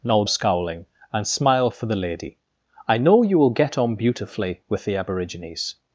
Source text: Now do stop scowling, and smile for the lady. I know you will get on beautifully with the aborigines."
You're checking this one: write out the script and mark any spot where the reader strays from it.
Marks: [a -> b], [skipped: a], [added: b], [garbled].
Now [skipped: do stop] scowling, and smile for the lady. I know you will get on beautifully with the aborigines."